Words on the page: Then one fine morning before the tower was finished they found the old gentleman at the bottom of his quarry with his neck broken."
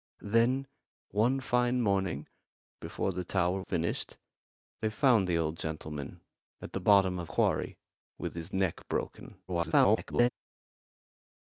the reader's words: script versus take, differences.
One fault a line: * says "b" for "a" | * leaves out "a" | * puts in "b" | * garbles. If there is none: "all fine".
* leaves out "was"
* leaves out "his"
* garbles